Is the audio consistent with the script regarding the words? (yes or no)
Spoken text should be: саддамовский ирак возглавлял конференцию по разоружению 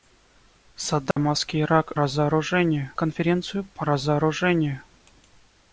no